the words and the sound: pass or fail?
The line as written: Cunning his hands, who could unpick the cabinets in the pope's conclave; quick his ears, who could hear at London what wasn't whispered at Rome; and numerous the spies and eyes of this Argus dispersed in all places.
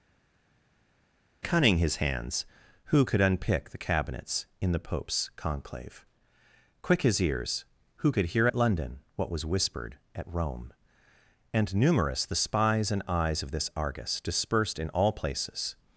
fail